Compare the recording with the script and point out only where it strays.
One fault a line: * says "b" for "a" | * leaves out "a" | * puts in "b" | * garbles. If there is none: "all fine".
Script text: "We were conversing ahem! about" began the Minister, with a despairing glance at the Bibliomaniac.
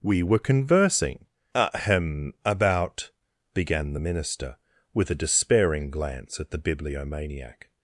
all fine